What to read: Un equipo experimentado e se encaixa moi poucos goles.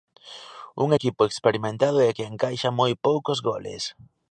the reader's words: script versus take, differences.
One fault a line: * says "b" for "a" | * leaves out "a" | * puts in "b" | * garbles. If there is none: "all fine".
* says "que" for "se"